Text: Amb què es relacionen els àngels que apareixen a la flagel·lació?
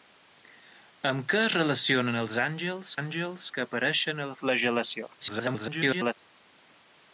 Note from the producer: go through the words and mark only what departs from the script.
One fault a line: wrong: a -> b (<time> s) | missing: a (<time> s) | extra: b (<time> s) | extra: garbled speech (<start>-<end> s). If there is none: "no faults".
extra: àngels (3.0 s)
extra: garbled speech (5.2-6.1 s)